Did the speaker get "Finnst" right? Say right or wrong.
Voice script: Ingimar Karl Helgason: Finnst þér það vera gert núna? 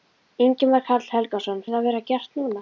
wrong